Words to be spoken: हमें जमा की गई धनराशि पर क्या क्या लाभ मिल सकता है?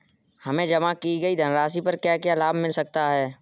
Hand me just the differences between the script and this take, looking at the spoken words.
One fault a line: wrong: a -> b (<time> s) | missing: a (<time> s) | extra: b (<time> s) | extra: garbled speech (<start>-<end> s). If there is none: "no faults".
no faults